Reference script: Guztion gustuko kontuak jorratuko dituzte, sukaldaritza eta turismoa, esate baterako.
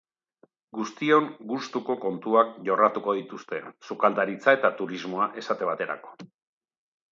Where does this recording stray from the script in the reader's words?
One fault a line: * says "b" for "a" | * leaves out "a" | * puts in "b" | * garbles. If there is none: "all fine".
all fine